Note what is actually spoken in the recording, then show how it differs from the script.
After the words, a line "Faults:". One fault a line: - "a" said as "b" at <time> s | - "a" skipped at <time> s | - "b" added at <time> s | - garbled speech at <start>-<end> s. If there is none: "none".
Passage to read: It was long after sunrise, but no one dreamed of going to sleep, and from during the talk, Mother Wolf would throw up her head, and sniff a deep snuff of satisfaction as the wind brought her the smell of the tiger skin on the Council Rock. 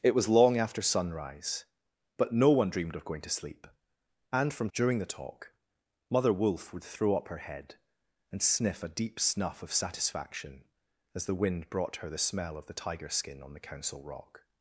It was long after sunrise, but no one dreamed of going to sleep, and from during the talk, Mother Wolf would throw up her head, and sniff a deep snuff of satisfaction as the wind brought her the smell of the tiger skin on the Council Rock.
Faults:
none